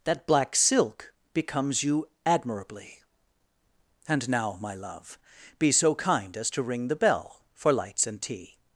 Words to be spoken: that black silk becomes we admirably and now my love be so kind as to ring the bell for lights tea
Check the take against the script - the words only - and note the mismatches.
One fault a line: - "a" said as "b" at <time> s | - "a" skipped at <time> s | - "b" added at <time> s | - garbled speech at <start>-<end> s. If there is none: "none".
- "we" said as "you" at 1.8 s
- "and" added at 8.1 s